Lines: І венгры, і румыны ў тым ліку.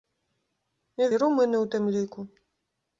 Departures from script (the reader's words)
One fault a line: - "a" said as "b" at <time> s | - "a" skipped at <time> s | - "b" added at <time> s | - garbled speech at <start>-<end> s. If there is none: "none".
- "венгры" skipped at 1.1 s